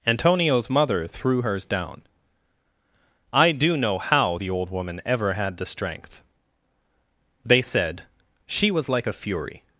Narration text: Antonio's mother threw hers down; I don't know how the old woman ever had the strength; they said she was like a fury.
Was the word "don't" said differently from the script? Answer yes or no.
yes